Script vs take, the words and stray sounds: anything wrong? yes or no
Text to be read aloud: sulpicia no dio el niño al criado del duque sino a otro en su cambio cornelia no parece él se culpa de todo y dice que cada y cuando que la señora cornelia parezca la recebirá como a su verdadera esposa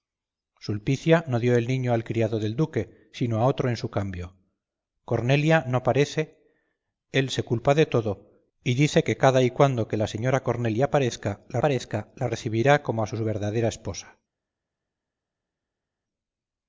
yes